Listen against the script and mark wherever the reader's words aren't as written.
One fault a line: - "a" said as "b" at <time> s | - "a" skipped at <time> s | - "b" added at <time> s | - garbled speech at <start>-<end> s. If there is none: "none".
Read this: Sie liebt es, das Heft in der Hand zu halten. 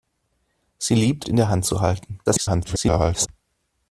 - "es das Heft" skipped at 1.3 s
- garbled speech at 2.3-3.3 s